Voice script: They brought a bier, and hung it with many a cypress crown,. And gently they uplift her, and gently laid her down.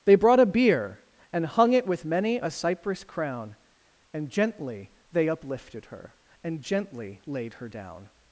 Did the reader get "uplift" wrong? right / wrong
wrong